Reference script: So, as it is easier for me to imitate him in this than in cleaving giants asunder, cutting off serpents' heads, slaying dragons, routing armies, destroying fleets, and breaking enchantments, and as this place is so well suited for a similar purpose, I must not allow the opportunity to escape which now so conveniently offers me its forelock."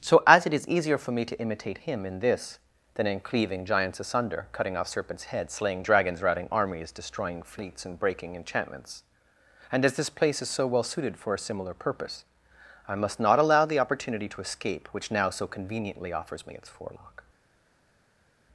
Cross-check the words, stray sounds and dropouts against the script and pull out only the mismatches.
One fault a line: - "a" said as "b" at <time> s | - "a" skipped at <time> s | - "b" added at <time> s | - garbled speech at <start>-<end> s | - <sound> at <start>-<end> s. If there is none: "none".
none